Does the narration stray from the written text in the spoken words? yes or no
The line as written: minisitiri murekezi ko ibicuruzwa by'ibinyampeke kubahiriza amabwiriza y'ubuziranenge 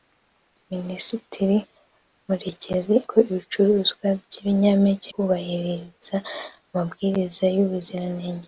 no